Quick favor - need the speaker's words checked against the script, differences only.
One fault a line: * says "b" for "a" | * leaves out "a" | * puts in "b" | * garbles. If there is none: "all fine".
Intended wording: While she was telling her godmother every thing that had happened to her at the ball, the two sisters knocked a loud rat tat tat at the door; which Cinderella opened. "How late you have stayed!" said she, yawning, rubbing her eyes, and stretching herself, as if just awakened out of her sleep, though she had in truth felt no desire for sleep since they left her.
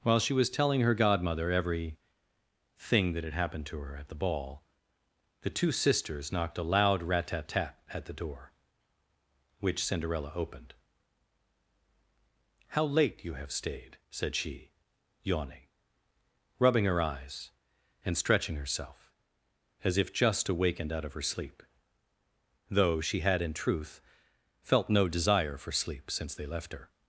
all fine